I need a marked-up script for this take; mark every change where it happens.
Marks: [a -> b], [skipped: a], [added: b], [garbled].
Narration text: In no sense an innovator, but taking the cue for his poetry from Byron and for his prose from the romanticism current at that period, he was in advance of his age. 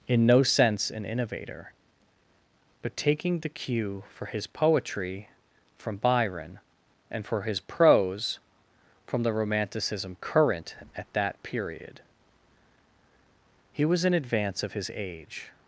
In no sense an innovator, but taking the cue for his poetry from Byron and for his prose from the romanticism current at that period, he was in advance of his age.